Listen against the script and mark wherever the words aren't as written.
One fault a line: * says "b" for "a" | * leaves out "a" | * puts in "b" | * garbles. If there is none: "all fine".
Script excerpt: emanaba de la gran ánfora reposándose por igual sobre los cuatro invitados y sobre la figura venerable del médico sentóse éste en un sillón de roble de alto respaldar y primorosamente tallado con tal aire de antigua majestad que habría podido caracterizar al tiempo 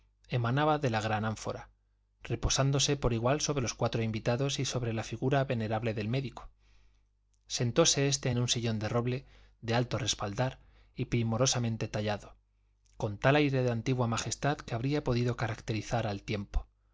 all fine